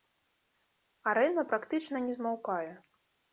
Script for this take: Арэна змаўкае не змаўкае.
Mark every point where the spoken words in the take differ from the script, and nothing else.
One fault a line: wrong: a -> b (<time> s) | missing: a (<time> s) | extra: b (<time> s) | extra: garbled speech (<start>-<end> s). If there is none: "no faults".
wrong: змаўкае -> практычна (1.5 s)